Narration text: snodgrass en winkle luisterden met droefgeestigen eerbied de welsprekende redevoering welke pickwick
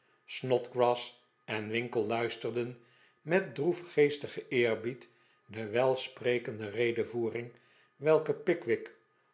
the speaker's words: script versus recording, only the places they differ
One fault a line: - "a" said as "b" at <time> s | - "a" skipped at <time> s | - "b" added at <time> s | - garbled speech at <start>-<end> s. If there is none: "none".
none